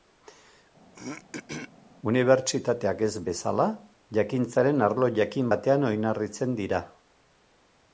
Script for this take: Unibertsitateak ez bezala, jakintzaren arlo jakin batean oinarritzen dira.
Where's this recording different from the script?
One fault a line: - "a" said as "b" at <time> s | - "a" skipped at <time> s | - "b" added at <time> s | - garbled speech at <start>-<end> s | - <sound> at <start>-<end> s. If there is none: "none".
- throat clearing at 0.9-1.7 s